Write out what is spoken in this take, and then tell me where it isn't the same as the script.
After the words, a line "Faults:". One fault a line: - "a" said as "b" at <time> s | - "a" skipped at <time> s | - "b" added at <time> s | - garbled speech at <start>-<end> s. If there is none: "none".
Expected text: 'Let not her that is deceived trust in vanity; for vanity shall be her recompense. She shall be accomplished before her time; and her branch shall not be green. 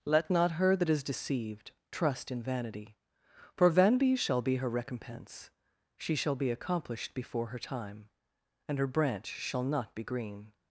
'Let not her that is deceived trust in vanity; for vanity shall be her recompense. She shall be accomplished before her time; and her branch shall not be green.
Faults:
none